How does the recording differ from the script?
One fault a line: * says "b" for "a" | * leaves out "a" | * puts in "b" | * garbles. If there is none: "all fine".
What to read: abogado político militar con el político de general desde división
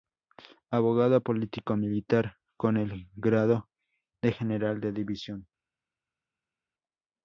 * says "grado" for "político"
* says "de" for "desde"